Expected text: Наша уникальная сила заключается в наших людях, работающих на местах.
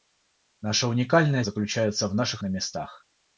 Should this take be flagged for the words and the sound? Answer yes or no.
yes